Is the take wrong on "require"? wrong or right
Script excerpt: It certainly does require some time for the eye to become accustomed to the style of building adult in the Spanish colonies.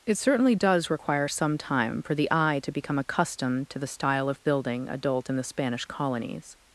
right